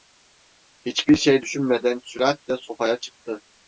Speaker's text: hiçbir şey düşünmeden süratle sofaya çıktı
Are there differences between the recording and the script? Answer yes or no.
no